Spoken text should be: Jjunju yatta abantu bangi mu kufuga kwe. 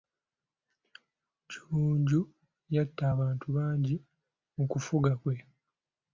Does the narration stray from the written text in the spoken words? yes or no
no